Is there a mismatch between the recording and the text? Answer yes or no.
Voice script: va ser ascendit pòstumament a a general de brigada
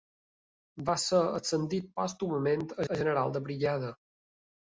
no